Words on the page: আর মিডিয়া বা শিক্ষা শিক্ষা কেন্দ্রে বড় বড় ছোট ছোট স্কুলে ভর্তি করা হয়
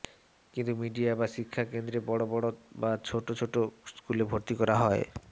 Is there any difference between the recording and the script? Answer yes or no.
yes